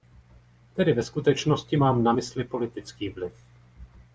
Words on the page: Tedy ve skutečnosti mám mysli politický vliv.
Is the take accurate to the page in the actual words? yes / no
no